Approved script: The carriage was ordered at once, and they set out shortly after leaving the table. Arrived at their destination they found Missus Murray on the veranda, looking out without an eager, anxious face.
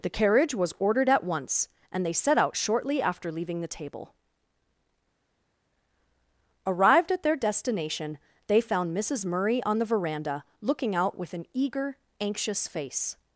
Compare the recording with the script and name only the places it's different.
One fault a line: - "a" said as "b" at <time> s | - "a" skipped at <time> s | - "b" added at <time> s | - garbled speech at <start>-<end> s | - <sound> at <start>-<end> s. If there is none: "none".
- "without" said as "with" at 11.2 s